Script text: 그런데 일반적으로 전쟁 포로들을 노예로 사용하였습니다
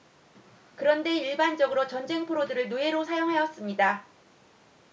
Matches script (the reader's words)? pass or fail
pass